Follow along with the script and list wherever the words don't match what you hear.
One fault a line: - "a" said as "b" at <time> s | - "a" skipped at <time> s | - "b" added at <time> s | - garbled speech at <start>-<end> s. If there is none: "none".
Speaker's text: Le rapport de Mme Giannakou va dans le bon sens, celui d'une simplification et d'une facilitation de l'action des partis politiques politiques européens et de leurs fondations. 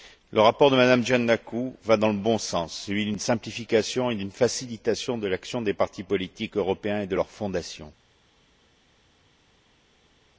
- "politiques" skipped at 6.6 s